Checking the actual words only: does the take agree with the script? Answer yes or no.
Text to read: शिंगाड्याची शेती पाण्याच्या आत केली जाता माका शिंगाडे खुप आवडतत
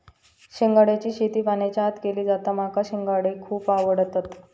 yes